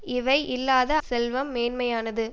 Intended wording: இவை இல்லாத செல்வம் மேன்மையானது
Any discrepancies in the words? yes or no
no